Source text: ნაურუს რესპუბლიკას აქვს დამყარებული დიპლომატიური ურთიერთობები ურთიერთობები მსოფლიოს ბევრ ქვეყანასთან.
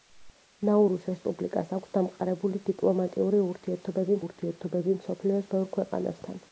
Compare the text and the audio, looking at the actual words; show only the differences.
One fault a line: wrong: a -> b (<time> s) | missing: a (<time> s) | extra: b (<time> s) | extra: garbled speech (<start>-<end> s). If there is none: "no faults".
no faults